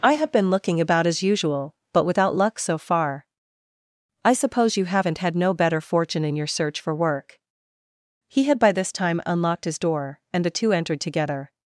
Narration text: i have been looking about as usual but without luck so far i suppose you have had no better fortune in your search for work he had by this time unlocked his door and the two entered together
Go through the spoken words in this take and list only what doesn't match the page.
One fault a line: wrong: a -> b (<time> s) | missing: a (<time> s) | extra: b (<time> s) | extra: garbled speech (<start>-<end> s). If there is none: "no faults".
wrong: have -> haven't (4.8 s)